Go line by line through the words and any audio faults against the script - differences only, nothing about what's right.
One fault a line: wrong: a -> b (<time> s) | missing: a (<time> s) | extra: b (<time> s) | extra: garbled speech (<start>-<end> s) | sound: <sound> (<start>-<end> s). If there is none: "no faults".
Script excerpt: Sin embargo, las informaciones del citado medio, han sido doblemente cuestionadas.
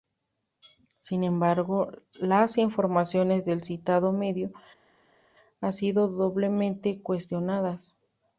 no faults